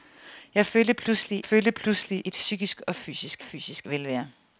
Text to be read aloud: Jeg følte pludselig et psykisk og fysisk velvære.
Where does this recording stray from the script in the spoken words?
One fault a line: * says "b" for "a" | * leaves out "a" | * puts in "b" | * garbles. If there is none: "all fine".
* puts in "følte pludselig"
* puts in "fysisk"